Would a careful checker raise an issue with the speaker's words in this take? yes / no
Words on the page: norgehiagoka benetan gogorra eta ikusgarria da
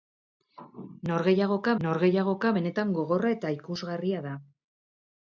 yes